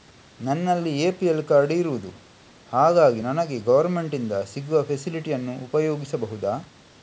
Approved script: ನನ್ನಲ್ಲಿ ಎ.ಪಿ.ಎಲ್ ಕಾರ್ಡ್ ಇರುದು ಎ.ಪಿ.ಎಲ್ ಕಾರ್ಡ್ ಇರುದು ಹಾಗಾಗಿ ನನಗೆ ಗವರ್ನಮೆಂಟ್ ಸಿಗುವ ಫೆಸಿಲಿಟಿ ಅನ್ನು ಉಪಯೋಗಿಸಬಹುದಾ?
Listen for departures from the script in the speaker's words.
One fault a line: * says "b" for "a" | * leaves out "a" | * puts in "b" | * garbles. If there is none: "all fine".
* leaves out "ಎ.ಪಿ.ಎಲ್ ಕಾರ್ಡ್ ಇರುದು"
* puts in "ಇಂದ"